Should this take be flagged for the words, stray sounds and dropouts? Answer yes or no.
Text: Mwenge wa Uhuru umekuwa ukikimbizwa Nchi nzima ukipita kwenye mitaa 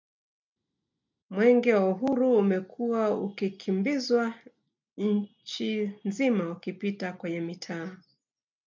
no